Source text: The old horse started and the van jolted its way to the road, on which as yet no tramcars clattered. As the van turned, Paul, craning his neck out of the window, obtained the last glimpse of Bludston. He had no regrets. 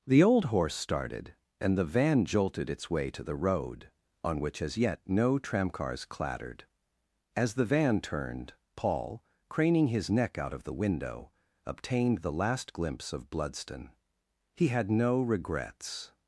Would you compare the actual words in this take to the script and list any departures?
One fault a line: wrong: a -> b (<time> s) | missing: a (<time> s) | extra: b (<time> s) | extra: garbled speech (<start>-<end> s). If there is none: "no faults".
no faults